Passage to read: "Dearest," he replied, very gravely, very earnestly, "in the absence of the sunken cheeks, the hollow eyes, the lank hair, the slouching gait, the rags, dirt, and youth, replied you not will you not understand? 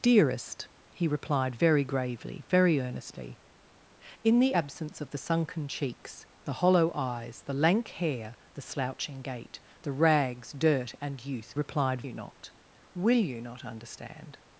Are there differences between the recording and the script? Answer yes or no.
no